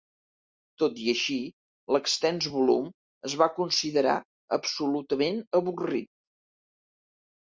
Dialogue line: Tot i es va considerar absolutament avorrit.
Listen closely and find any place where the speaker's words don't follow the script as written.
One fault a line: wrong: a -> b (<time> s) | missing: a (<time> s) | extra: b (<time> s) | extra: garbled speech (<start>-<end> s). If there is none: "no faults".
extra: així l'extens volum (1.1 s)